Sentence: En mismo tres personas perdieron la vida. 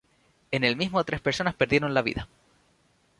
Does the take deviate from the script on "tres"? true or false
false